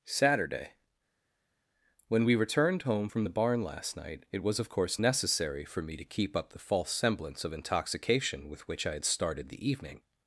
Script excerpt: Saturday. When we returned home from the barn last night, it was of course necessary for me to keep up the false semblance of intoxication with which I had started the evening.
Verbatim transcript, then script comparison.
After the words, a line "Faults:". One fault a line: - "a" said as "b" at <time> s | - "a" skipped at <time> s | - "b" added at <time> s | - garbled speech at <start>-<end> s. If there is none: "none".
Saturday. When we returned home from the barn last night, it was of course necessary for me to keep up the false semblance of intoxication with which I had started the evening.
Faults:
none